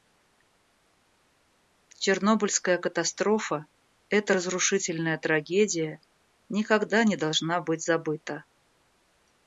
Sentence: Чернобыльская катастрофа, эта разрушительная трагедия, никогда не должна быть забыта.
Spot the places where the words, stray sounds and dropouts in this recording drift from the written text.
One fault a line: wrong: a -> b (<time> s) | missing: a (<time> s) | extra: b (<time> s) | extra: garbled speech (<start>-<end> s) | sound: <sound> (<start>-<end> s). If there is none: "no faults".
no faults